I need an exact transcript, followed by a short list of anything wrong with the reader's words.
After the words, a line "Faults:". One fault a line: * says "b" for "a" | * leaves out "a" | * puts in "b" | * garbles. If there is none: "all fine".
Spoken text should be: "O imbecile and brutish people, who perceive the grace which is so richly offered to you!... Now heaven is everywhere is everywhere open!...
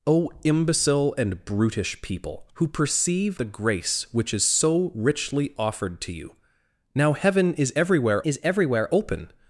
"O imbecile and brutish people, who perceive the grace which is so richly offered to you!... Now heaven is everywhere is everywhere open!...
Faults:
all fine